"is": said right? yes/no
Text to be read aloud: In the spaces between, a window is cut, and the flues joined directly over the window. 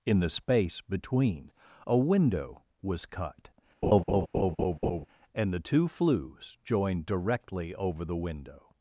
no